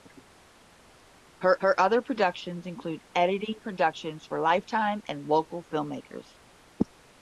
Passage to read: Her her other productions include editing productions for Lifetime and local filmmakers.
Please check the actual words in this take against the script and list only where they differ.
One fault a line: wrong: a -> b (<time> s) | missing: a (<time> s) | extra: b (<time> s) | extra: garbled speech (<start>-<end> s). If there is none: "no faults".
no faults